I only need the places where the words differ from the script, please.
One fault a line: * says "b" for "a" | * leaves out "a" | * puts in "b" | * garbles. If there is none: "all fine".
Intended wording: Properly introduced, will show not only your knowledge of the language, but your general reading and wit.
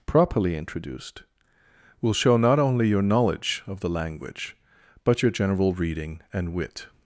all fine